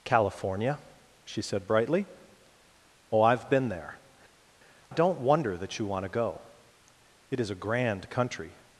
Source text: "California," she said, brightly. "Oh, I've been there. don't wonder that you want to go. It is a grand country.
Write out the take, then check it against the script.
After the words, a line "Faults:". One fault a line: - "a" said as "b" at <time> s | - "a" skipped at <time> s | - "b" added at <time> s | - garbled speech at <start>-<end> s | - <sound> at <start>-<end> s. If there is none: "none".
"California," she said, brightly. "Oh, I've been there. don't wonder that you want to go. It is a grand country.
Faults:
none